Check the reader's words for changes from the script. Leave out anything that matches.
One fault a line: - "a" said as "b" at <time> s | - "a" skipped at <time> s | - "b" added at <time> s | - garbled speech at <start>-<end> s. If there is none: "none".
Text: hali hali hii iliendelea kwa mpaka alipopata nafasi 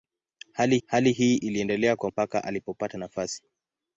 none